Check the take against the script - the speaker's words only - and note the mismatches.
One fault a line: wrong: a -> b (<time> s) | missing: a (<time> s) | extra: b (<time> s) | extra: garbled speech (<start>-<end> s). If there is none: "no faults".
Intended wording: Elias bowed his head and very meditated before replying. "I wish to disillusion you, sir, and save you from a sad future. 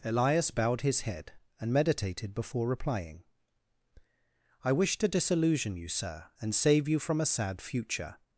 missing: very (1.7 s)